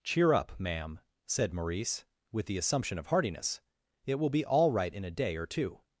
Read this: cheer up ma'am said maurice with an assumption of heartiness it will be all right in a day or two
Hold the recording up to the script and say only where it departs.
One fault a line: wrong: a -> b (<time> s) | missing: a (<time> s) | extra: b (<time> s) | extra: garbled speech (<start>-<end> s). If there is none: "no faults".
wrong: an -> the (2.5 s)